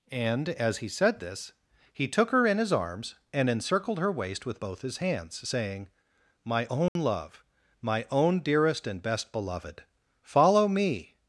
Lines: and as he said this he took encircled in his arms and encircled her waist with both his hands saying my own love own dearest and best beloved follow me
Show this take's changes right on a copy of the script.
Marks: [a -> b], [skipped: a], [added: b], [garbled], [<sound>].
and as he said this he took [encircled -> her] in his arms and encircled her waist with both his hands saying my own [dropout] love [added: my] own dearest and best beloved follow me